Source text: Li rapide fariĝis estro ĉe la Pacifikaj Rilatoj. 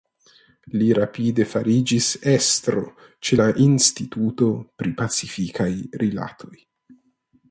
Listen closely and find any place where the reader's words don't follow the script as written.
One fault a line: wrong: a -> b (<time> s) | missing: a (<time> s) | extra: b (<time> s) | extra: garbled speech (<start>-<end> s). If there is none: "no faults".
extra: Instituto pri (3.7 s)